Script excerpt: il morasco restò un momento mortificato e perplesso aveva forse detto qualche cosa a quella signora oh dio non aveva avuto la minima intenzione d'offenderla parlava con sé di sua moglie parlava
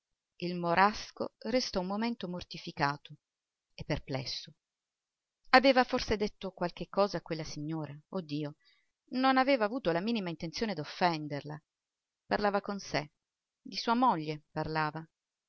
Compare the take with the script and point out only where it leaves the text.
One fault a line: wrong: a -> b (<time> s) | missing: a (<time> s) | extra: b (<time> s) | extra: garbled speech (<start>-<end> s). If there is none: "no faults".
no faults